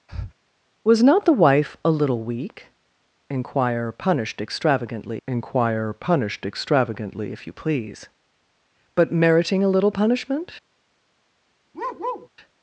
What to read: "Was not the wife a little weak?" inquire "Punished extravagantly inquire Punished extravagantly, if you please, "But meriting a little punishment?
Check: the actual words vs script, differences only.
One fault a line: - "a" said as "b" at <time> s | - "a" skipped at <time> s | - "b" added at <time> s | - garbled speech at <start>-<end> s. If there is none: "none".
none